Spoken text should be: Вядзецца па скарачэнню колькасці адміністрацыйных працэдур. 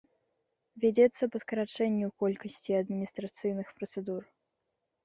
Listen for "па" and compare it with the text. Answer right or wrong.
right